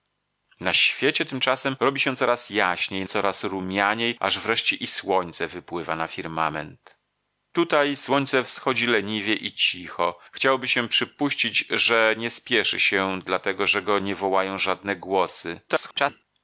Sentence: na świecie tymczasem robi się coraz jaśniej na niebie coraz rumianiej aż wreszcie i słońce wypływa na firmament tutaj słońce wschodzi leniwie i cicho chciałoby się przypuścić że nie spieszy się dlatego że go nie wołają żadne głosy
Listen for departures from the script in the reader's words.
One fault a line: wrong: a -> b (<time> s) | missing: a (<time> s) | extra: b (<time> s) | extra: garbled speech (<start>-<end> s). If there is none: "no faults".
missing: na niebie (3.0 s)
extra: garbled speech (15.7-16.2 s)